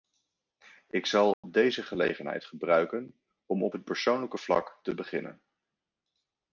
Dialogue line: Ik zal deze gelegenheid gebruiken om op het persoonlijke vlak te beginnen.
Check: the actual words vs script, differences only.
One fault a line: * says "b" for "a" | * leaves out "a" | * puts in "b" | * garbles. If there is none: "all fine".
all fine